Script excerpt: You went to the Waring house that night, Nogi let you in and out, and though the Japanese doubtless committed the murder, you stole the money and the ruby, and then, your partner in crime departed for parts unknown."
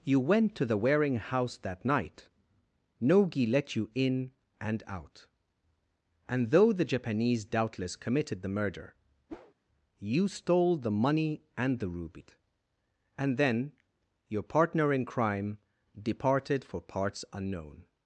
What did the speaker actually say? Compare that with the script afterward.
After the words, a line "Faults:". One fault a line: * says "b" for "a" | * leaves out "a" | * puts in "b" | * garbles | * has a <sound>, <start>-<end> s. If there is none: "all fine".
You went to the Waring house that night, Nogi let you in and out, and though the Japanese doubtless committed the murder, you stole the money and the ruby, and then, your partner in crime departed for parts unknown."
Faults:
* has a whoosh, 9.3-9.5 s